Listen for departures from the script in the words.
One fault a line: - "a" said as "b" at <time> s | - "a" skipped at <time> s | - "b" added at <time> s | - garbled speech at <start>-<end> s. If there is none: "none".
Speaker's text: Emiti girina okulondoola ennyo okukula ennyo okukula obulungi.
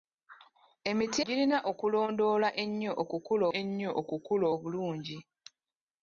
none